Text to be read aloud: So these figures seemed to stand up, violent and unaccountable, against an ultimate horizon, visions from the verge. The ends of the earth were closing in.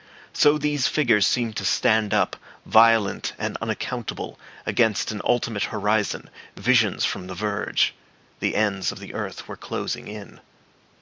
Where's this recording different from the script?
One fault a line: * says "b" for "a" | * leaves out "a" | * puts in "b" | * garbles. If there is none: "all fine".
all fine